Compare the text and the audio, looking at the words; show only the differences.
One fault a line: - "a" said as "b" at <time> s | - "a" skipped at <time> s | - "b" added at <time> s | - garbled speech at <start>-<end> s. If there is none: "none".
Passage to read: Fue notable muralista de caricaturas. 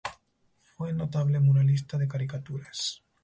none